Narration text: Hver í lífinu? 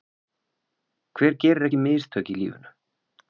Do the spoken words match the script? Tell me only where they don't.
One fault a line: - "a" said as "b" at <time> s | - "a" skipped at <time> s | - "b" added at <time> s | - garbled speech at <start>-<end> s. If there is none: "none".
- "gerir ekki mistök" added at 1.4 s